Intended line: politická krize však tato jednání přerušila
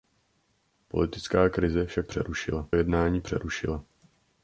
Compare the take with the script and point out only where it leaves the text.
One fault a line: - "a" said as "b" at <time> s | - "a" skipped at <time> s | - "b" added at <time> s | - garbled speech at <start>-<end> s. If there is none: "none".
- "tato" said as "přerušila" at 2.1 s